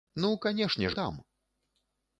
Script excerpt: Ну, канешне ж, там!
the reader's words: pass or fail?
pass